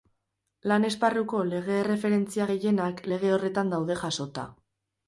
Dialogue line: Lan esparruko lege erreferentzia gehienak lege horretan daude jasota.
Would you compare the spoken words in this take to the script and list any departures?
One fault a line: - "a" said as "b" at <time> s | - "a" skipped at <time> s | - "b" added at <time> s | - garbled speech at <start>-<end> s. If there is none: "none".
none